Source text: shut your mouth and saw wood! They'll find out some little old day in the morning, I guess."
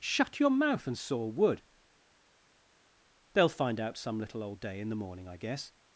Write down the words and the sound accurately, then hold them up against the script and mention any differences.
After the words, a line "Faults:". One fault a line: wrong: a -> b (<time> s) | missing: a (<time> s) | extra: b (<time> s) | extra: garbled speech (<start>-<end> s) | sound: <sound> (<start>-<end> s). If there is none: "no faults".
shut your mouth and saw wood! They'll find out some little old day in the morning, I guess."
Faults:
no faults